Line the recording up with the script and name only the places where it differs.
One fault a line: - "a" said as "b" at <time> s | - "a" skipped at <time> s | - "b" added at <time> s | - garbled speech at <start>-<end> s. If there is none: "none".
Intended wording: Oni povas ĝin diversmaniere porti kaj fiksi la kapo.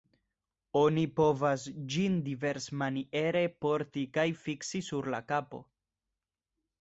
- "sur" added at 4.9 s